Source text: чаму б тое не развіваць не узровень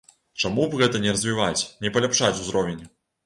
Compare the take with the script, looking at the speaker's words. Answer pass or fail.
fail